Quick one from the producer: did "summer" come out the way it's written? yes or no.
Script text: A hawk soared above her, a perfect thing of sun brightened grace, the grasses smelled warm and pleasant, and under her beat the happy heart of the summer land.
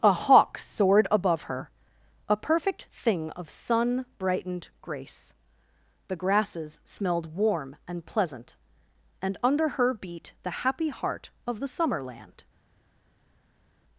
yes